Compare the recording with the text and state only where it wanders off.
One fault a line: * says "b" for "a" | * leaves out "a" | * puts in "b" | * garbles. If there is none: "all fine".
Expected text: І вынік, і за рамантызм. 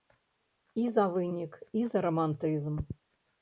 * puts in "за"